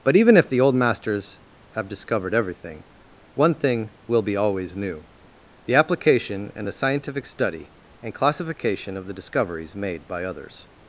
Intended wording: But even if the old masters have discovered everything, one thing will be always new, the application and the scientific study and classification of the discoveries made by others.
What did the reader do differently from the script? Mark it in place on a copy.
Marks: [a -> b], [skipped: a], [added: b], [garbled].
But even if the old masters have discovered everything, one thing will be always new, the application and the scientific study and classification of the discoveries made by others.